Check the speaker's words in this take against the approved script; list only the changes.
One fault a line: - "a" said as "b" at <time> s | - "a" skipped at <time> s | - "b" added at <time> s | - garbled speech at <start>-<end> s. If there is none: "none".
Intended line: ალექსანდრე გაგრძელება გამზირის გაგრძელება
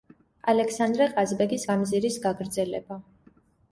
- "გაგრძელება" said as "ყაზბეგის" at 1.1 s